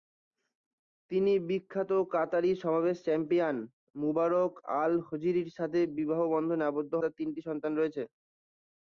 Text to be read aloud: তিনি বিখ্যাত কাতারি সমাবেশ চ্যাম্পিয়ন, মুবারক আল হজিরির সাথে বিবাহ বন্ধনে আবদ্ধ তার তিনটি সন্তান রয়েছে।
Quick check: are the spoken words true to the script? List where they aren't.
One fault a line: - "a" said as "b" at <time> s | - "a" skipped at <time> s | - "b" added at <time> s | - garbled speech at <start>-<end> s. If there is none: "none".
none